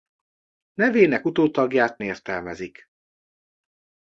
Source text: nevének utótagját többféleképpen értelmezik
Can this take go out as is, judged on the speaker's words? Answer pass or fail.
fail